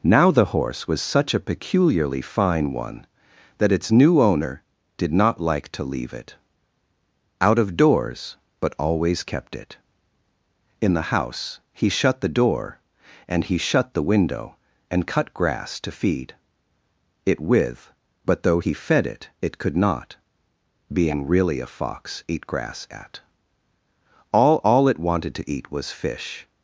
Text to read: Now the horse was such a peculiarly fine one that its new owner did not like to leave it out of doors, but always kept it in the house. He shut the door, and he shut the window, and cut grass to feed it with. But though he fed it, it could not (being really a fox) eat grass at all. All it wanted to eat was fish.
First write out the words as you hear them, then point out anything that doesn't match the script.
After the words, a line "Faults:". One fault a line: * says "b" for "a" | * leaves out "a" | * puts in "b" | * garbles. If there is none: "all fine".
Now the horse was such a peculiarly fine one that its new owner did not like to leave it out of doors, but always kept it in the house. He shut the door, and he shut the window, and cut grass to feed it with. But though he fed it, it could not (being really a fox) eat grass at all. All it wanted to eat was fish.
Faults:
all fine